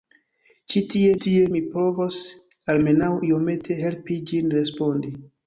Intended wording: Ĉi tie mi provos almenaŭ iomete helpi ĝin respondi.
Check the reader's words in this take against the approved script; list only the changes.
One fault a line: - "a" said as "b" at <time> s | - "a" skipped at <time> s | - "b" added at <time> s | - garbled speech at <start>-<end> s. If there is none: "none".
- "tie" added at 1.2 s